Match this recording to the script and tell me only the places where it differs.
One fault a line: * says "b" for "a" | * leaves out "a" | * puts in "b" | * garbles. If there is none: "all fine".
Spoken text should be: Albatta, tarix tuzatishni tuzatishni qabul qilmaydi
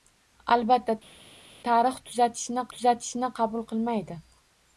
all fine